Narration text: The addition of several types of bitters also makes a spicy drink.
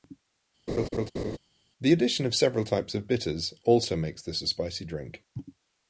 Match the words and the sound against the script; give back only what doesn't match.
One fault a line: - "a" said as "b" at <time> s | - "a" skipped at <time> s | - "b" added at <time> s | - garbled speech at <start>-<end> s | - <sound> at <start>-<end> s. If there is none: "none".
- laugh at 0.7-1.4 s
- "this" added at 4.2 s